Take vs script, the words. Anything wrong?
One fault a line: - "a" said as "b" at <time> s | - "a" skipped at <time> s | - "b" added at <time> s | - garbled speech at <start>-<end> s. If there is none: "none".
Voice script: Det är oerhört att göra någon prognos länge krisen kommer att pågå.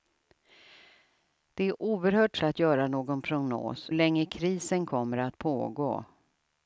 none